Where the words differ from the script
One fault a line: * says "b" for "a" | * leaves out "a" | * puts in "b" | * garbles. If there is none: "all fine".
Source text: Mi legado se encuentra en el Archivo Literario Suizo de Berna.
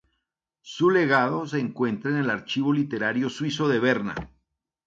* says "Su" for "Mi"